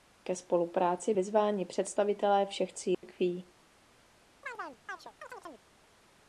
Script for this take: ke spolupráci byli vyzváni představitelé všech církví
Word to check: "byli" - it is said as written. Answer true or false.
false